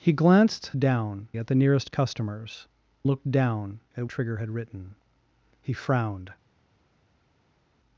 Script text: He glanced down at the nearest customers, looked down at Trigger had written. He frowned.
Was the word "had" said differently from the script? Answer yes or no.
no